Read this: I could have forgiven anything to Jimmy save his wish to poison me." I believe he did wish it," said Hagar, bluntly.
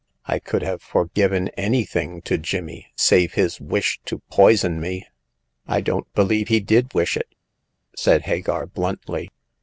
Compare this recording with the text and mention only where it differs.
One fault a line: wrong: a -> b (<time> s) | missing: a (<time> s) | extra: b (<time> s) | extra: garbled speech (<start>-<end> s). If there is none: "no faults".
extra: don't (5.8 s)